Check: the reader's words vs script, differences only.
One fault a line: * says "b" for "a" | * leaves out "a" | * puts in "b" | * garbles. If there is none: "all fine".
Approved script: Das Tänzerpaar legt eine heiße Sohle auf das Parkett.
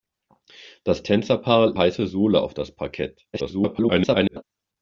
* leaves out "legt eine"
* garbles